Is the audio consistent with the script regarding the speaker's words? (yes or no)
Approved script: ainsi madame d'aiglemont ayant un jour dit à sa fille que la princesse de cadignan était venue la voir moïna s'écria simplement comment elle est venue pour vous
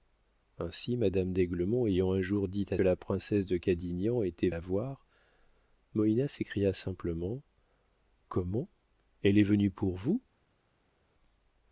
no